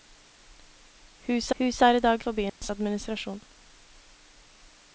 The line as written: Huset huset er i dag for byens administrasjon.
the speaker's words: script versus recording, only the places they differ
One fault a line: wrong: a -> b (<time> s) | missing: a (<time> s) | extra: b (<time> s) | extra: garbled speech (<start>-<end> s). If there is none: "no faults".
no faults